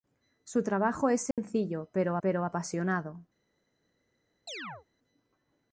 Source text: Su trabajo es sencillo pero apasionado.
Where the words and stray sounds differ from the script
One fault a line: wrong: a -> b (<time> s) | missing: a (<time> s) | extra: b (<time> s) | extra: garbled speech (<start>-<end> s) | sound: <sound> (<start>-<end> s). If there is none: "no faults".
sound: dropout (1.3-1.4 s)
extra: pero (2.2 s)
sound: chirp (4.5-4.9 s)